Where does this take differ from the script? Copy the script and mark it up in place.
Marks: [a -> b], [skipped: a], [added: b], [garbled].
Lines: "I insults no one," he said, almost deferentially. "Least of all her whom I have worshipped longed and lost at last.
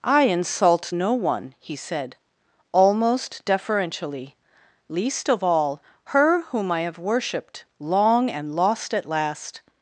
"I [insults -> insult] no one," he said, almost deferentially. "Least of all her whom I have worshipped [longed -> long] and lost at last.